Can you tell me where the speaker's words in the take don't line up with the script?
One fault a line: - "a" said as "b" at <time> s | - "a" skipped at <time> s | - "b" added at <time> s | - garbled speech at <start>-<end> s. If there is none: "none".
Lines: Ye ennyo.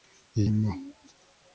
none